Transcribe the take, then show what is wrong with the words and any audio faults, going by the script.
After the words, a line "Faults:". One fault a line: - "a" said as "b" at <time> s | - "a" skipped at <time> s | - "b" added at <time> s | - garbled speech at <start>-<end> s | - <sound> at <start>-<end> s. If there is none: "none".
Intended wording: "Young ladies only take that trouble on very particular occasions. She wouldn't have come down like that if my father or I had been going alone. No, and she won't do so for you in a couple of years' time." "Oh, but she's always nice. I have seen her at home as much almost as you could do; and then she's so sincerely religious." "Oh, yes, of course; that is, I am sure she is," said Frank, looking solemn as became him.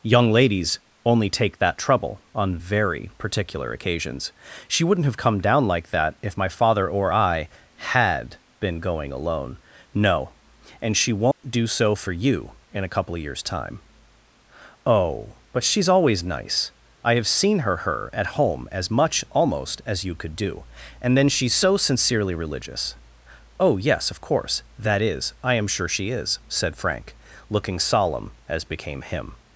"Young ladies only take that trouble on very particular occasions. She wouldn't have come down like that if my father or I had been going alone. No, and she won't do so for you in a couple of years' time." "Oh, but she's always nice. I have seen her her at home as much almost as you could do; and then she's so sincerely religious." "Oh, yes, of course; that is, I am sure she is," said Frank, looking solemn as became him.
Faults:
- dropout at 11.3-11.4 s
- "her" added at 17.8 s